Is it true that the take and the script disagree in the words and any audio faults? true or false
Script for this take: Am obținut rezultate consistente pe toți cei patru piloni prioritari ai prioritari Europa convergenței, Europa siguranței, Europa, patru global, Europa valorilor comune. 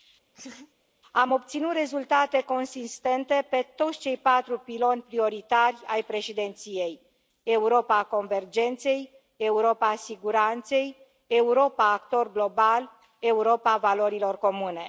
true